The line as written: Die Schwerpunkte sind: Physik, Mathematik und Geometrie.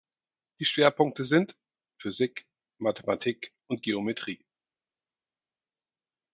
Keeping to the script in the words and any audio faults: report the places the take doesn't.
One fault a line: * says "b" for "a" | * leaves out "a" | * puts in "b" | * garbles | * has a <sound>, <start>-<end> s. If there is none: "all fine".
all fine